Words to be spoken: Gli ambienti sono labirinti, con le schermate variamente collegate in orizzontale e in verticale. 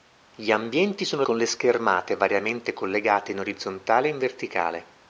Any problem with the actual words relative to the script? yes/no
yes